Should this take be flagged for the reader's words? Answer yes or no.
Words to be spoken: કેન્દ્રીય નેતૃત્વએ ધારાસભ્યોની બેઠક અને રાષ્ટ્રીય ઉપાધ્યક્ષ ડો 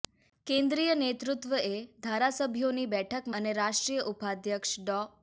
no